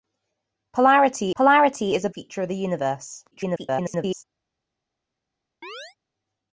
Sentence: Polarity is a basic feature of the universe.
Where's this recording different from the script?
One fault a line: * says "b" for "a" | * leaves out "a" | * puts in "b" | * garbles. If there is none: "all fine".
* puts in "polarity"
* leaves out "basic"
* garbles